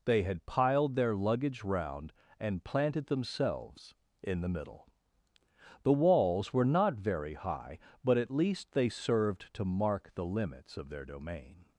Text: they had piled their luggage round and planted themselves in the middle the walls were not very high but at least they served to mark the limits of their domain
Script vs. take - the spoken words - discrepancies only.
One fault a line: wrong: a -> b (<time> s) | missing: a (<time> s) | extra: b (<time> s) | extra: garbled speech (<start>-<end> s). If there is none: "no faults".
no faults